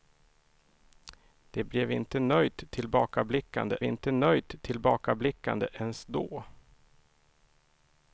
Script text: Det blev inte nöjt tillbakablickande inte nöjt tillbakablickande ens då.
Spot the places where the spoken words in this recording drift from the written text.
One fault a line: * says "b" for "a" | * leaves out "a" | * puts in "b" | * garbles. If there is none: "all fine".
all fine